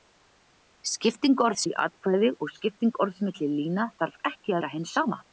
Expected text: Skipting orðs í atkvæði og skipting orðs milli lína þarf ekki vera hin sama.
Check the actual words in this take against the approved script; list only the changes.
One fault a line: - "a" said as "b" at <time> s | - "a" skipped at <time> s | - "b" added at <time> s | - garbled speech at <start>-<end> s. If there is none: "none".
none